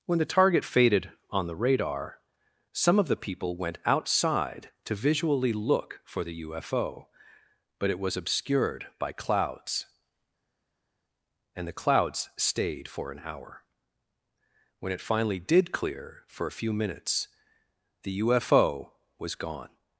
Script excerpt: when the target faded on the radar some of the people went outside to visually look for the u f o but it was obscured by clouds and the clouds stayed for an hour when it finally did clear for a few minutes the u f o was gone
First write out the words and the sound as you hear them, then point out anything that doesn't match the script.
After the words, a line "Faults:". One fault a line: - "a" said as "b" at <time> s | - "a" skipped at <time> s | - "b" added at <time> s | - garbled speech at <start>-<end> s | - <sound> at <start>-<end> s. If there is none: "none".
when the target faded on the radar some of the people went outside to visually look for the u f o but it was obscured by clouds and the clouds stayed for an hour when it finally did clear for a few minutes the u f o was gone
Faults:
none